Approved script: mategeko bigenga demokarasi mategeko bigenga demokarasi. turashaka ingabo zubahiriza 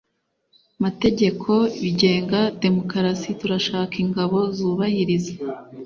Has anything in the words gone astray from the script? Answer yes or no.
yes